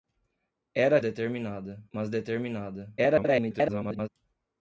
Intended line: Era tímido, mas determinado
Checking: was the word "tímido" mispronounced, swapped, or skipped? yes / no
yes